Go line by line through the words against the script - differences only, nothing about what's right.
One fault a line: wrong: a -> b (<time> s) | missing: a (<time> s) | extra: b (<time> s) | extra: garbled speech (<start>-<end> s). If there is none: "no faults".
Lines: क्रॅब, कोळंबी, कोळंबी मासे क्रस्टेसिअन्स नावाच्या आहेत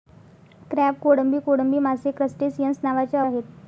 no faults